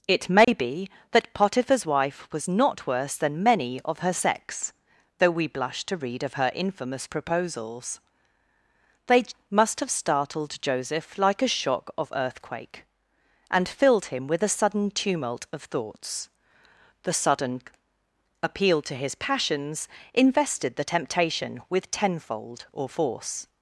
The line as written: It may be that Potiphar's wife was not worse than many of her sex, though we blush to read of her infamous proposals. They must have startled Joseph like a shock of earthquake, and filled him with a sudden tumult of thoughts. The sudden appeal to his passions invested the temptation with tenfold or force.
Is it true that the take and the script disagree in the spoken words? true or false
false